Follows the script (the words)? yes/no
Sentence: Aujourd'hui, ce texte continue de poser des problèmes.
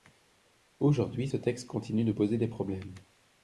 yes